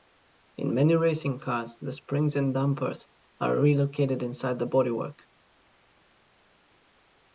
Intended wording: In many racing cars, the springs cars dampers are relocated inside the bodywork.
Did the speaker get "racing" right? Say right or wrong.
right